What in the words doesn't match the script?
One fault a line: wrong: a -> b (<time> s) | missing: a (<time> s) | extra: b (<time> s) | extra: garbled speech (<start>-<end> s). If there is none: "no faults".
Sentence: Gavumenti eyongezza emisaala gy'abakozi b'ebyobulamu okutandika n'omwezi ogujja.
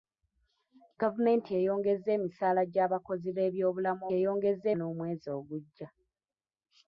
wrong: okutandika -> eyongezza (4.2 s)